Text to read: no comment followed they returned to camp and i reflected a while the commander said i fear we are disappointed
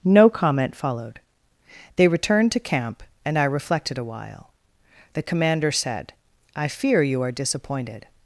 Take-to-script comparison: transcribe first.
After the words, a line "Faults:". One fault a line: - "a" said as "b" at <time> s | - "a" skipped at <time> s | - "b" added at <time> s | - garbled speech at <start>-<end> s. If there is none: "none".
no comment followed they returned to camp and i reflected a while the commander said i fear you are disappointed
Faults:
- "we" said as "you" at 7.0 s